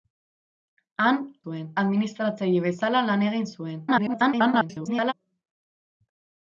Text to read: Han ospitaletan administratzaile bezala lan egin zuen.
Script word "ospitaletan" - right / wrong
wrong